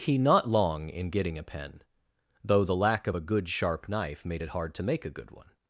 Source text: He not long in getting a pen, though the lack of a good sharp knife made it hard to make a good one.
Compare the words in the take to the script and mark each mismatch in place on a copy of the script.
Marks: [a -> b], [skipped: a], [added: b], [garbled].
He not long in getting a pen, though the lack of a good sharp knife made it hard to make a good one.